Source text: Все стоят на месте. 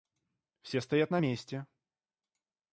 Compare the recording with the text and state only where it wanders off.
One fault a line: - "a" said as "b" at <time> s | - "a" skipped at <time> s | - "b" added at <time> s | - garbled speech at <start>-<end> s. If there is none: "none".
none